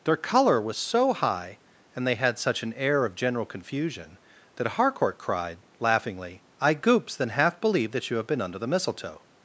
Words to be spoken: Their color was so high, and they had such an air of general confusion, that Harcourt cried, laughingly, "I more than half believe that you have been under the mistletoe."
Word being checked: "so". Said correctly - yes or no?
yes